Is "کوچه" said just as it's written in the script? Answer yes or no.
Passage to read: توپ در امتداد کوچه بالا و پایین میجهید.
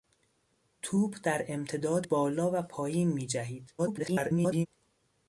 no